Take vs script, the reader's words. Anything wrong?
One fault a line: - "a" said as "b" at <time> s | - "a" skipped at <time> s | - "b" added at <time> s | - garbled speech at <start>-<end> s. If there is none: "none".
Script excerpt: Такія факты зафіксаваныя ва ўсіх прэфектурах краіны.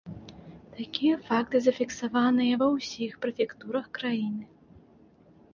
none